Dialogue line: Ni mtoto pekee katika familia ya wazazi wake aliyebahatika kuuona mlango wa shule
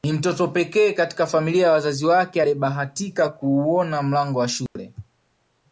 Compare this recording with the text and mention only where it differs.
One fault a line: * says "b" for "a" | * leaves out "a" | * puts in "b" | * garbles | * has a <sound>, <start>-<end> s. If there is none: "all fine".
* has a dropout, 4.7-4.8 s